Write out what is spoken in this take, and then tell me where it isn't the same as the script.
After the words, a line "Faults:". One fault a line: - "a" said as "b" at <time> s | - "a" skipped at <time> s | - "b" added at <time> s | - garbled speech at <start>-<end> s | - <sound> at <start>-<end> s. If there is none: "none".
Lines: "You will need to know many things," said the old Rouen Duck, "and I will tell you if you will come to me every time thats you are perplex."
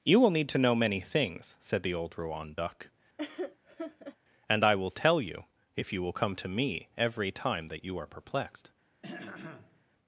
"You will need to know many things," said the old Rouen Duck, "and I will tell you if you will come to me every time that you are perplexed."
Faults:
- laugh at 3.2-4.2 s
- "thats" said as "that" at 7.7 s
- "perplex" said as "perplexed" at 8.1 s
- throat clearing at 9.0-9.8 s